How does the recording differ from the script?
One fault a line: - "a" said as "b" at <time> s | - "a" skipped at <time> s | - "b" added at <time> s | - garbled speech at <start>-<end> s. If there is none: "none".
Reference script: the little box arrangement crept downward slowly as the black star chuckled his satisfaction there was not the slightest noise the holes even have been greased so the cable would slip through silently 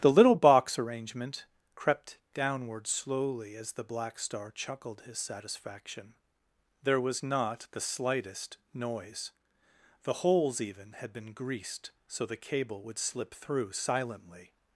- "have" said as "had" at 10.9 s